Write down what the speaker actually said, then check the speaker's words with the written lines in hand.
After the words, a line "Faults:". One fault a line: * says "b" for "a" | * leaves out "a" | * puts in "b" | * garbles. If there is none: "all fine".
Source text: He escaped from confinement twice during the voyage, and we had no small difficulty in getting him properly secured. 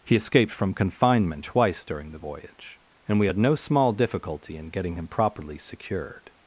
He escaped from confinement twice during the voyage, and we had no small difficulty in getting him properly secured.
Faults:
all fine